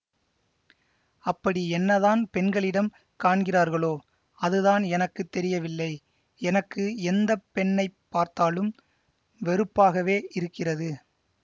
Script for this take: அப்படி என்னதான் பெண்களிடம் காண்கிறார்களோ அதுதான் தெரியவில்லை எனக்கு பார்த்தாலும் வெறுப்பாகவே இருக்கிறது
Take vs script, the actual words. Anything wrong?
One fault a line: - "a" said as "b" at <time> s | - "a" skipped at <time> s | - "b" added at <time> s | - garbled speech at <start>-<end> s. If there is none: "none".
- "எனக்கு" added at 5.0 s
- "எந்த பெண்ணை" added at 7.1 s